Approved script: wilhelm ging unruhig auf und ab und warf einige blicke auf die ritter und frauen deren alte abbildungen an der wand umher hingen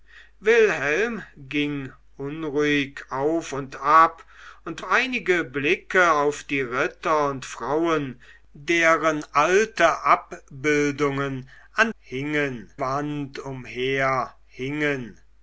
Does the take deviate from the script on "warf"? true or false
true